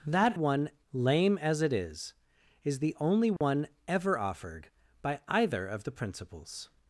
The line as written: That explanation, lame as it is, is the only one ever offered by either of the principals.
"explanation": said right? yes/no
no